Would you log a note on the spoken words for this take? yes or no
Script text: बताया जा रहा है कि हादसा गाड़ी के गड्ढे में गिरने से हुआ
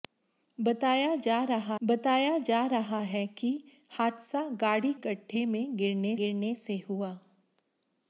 yes